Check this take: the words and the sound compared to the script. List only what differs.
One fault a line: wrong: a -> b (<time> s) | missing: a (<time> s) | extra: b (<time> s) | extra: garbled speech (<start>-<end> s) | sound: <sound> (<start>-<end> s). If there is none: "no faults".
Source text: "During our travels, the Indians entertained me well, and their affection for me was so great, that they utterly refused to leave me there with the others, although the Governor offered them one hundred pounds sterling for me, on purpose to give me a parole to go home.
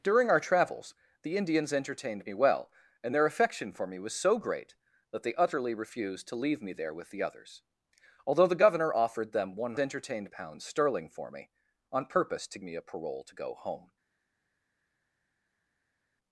wrong: hundred -> entertained (9.8 s)
missing: give (12.6 s)